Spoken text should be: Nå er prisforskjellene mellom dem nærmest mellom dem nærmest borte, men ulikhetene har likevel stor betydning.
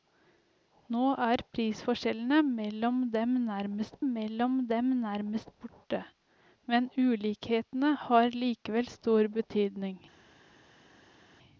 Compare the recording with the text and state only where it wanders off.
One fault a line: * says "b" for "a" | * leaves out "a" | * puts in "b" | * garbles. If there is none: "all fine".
all fine